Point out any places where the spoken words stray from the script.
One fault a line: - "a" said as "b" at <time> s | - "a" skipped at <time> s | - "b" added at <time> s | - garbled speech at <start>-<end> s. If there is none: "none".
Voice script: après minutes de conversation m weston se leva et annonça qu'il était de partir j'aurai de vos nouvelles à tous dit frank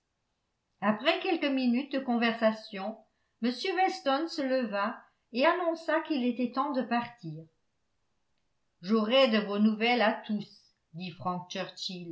- "quelques" added at 1.2 s
- "temps" added at 6.5 s